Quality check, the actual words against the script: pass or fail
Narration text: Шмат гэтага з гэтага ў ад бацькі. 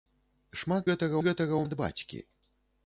pass